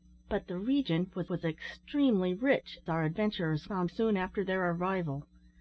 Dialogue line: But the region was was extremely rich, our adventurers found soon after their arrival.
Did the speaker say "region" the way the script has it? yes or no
yes